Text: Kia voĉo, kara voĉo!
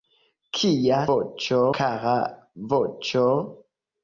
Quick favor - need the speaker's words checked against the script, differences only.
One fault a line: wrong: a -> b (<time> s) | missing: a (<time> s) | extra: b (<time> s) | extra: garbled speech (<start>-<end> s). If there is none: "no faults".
no faults